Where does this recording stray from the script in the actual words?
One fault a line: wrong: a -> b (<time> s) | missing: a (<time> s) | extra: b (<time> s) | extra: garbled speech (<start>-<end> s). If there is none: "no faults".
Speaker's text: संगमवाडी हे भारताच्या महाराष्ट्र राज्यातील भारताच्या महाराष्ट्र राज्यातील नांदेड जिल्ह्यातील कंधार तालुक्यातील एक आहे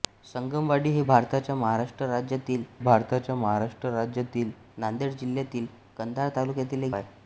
no faults